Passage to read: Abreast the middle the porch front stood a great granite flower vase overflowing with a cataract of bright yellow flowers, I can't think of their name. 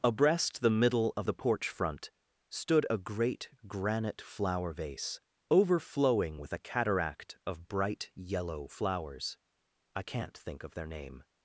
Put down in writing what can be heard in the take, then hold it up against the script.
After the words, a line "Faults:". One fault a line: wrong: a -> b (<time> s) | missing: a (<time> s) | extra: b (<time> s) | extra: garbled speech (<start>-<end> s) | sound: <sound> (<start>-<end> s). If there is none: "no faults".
Abreast the middle of the porch front stood a great granite flower vase overflowing with a cataract of bright yellow flowers, I can't think of their name.
Faults:
extra: of (1.1 s)